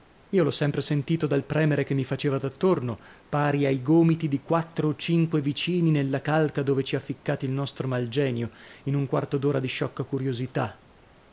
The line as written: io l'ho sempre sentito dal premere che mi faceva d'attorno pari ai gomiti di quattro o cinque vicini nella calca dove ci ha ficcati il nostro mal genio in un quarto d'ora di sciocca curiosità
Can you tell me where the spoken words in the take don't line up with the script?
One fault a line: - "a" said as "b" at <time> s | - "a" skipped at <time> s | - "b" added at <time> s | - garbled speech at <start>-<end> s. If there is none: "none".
none